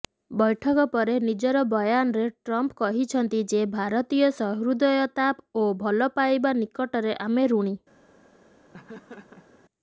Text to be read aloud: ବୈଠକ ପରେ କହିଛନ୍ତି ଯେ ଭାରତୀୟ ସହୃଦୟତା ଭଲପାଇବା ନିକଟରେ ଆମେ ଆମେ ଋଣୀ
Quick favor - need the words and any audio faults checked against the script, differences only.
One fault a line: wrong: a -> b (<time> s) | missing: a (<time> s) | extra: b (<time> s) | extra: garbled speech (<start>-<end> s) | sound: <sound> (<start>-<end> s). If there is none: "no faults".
extra: ନିଜର ବୟାନରେ ଟ୍ରମ୍ପ (1.2 s)
extra: ଓ (5.6 s)
missing: ଆମେ (7.5 s)
sound: laugh (8.7-9.6 s)